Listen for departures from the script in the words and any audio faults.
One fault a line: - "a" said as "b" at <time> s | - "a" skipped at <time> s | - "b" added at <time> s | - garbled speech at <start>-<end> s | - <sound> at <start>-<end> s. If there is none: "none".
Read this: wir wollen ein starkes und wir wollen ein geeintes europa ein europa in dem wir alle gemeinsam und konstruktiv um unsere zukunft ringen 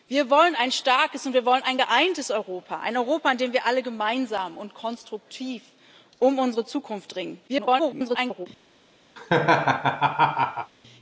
- garbled speech at 7.5-8.5 s
- laugh at 9.2-10.7 s